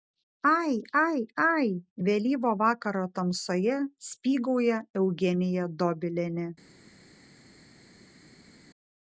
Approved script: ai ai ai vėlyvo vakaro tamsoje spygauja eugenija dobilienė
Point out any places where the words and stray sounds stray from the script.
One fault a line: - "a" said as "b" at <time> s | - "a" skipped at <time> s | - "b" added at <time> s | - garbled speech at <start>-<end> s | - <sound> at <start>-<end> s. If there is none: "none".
none